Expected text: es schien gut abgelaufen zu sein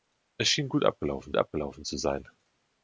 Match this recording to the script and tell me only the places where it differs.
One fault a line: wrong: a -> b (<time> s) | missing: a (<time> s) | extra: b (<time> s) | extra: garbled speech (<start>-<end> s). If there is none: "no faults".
extra: abgelaufen (1.4 s)